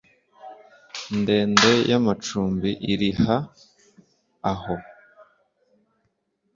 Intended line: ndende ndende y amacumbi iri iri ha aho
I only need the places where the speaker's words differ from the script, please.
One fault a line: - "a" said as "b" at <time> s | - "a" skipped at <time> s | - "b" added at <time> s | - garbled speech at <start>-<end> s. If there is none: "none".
- "ndende" skipped at 1.7 s
- "iri" skipped at 3.1 s